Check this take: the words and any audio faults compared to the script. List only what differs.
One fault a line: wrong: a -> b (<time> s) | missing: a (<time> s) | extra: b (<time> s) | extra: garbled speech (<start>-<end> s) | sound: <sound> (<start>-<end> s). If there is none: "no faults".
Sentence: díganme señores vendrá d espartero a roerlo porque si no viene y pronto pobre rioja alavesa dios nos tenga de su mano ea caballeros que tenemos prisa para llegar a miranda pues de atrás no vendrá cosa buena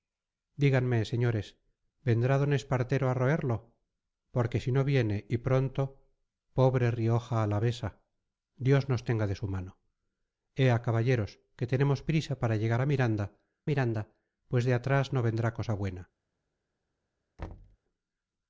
extra: miranda (13.7 s)
sound: thud (17.4-17.8 s)